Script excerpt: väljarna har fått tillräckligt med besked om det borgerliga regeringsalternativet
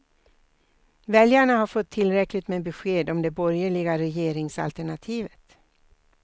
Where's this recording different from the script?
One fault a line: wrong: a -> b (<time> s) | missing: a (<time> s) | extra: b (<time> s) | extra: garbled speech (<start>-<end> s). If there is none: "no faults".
no faults